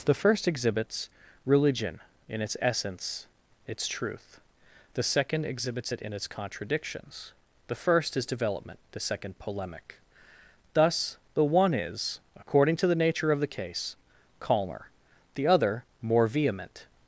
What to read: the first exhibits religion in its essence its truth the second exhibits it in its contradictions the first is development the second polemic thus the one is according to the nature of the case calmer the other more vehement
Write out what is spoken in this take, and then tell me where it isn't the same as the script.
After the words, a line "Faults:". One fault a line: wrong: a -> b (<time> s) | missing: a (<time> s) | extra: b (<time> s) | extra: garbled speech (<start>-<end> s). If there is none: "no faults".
the first exhibits religion in its essence its truth the second exhibits it in its contradictions the first is development the second polemic thus the one is according to the nature of the case calmer the other more vehement
Faults:
no faults